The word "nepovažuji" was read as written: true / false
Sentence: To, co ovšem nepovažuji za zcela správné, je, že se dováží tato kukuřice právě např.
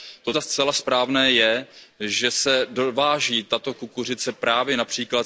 false